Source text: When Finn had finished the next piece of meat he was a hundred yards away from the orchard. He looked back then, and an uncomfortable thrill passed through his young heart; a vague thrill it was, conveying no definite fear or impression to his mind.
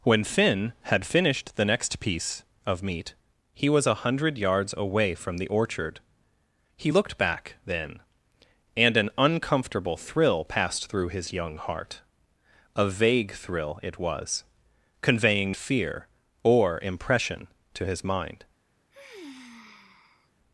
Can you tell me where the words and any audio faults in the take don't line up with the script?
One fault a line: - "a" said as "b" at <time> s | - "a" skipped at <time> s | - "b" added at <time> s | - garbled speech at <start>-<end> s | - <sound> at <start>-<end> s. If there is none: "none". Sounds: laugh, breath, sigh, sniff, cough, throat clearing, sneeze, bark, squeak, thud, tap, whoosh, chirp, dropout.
- "no definite" skipped at 15.6 s
- sigh at 18.9-20.3 s